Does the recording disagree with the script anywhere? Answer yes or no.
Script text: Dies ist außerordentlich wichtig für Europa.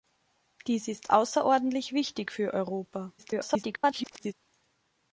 yes